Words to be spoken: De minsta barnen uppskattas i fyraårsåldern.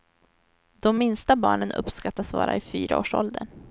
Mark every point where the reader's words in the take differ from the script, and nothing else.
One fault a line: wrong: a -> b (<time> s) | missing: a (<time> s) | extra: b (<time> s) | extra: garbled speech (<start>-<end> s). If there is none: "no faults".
extra: vara (2.3 s)